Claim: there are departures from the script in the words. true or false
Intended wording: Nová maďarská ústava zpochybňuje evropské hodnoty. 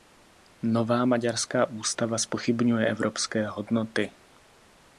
false